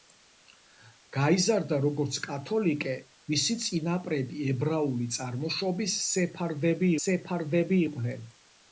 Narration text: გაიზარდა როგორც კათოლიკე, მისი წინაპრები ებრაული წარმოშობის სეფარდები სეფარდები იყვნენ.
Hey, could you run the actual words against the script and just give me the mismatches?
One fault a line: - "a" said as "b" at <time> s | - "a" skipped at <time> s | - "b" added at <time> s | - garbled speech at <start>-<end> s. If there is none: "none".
none